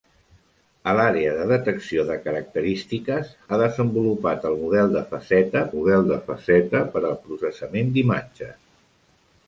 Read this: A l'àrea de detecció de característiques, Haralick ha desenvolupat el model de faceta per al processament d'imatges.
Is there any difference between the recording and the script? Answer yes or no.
yes